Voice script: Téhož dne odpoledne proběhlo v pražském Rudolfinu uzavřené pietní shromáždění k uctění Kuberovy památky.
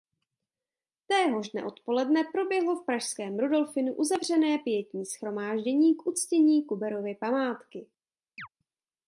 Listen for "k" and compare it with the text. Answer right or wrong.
right